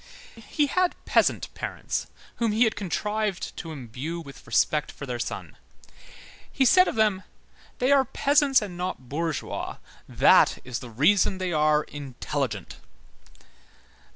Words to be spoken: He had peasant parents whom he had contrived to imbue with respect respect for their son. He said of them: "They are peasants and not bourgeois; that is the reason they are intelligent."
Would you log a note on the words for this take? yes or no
yes